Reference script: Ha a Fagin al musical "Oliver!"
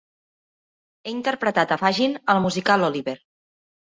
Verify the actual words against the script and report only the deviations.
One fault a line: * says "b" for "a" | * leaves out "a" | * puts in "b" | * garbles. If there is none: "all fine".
* puts in "interpretat"